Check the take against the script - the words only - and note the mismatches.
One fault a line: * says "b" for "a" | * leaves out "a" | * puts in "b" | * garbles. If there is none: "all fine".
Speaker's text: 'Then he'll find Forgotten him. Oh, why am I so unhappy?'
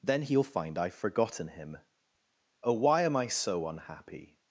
* puts in "I've"